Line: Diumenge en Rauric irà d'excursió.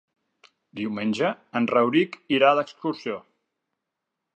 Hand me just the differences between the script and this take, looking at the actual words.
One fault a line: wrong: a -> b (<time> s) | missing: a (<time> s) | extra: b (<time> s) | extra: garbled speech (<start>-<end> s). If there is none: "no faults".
no faults